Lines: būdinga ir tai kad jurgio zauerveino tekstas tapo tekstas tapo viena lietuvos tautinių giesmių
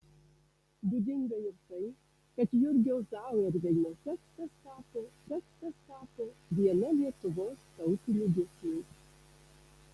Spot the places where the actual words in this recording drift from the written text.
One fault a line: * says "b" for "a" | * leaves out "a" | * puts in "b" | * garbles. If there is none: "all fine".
all fine